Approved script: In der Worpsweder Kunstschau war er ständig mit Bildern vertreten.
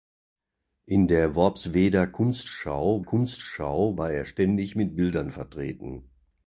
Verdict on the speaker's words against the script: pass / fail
fail